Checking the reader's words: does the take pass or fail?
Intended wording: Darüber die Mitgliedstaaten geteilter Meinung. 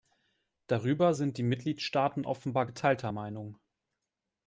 fail